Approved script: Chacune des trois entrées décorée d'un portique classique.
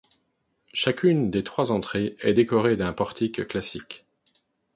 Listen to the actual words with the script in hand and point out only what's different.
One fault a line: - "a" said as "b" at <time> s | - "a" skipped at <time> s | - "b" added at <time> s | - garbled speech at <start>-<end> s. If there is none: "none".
- "est" added at 2.2 s